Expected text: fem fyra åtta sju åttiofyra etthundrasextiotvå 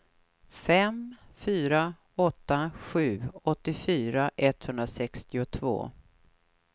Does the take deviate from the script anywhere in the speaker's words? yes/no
no